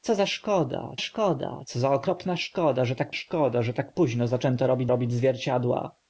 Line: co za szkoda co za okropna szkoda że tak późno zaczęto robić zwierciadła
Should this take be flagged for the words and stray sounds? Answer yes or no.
yes